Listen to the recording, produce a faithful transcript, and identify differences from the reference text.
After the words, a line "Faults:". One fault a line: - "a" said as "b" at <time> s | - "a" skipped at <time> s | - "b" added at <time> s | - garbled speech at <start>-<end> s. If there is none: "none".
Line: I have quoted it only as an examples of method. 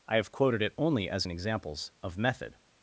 I have quoted it only as an examples of method.
Faults:
none